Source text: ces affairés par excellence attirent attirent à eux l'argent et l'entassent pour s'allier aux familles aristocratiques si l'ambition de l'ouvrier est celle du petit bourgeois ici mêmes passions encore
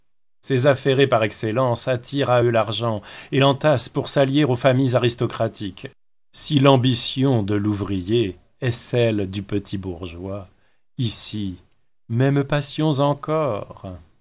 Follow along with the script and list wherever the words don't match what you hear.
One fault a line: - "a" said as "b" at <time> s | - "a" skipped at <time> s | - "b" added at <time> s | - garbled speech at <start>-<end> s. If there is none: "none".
- "attirent" skipped at 2.3 s